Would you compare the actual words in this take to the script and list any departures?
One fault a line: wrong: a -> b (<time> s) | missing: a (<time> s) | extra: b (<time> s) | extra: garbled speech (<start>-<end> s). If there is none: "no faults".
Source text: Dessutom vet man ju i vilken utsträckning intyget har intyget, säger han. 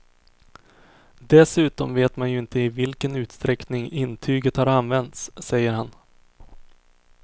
extra: inte (2.4 s)
wrong: intyget -> använts (4.7 s)